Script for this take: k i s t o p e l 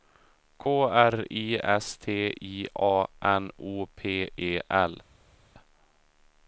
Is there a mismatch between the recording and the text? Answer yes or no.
yes